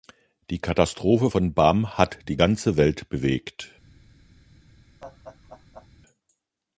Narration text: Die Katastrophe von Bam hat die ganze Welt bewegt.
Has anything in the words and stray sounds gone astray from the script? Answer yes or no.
yes